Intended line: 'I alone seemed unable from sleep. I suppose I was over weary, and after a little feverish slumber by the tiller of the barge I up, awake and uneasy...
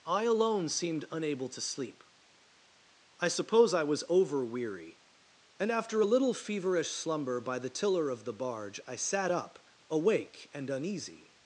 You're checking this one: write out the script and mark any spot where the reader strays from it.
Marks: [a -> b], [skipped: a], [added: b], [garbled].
'I alone seemed unable [from -> to] sleep. I suppose I was over weary, and after a little feverish slumber by the tiller of the barge I [added: sat] up, awake and uneasy...